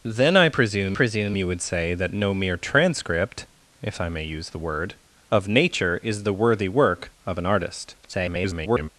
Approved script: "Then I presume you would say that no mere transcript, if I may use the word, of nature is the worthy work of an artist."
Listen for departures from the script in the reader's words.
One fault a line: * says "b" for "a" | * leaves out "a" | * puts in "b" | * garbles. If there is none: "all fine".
* puts in "presume"
* garbles